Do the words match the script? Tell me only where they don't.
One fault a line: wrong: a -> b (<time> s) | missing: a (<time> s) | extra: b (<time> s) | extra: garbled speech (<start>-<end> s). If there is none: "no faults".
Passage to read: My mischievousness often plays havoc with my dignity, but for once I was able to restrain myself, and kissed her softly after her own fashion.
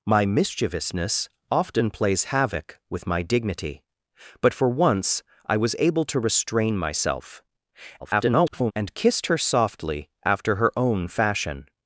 extra: garbled speech (8.0-8.7 s)